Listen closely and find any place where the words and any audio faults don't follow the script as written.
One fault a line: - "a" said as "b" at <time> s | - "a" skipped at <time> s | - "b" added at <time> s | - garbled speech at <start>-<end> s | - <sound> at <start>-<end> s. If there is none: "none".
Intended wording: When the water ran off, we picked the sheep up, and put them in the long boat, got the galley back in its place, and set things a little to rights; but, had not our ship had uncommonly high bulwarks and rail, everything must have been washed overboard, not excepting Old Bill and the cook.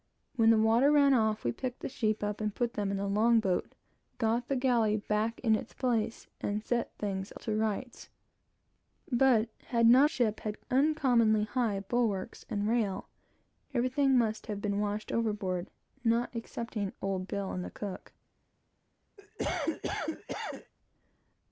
- "little" skipped at 7.4 s
- "our" skipped at 10.1 s
- cough at 19.2-20.7 s